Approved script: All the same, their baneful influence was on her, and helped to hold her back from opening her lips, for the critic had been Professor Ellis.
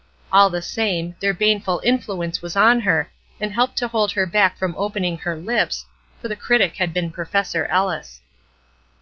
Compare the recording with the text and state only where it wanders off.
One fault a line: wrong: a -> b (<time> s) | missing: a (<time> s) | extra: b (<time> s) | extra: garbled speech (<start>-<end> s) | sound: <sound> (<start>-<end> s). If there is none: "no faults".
no faults